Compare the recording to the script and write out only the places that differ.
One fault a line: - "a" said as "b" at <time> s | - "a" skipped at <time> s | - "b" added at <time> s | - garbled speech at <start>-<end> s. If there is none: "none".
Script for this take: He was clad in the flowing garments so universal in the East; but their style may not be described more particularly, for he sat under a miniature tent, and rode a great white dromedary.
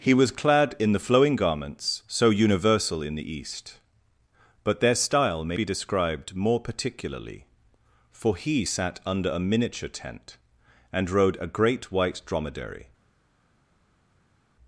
- "not" skipped at 5.6 s